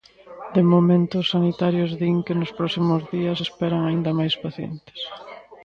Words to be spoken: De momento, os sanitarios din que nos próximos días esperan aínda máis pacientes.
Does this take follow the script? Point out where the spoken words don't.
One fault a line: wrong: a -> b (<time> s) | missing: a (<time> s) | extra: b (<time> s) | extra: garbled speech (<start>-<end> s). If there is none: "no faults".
no faults